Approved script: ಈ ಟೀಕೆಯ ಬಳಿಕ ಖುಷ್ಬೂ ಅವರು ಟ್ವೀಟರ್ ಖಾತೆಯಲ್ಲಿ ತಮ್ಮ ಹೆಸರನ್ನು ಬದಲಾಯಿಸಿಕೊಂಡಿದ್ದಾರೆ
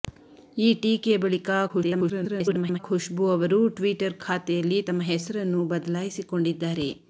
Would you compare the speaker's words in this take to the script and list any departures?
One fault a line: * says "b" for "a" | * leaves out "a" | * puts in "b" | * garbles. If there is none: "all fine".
* garbles